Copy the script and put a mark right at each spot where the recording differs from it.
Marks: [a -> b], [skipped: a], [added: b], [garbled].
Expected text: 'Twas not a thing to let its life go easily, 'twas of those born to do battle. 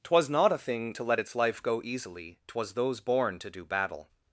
'Twas not a thing to let its life go easily, 'twas [skipped: of] those born to do battle.